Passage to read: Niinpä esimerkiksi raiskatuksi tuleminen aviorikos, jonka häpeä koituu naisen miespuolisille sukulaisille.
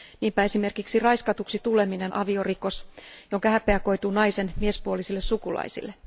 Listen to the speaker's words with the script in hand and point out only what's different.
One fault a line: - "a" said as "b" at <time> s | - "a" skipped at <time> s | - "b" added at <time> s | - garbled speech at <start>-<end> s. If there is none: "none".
none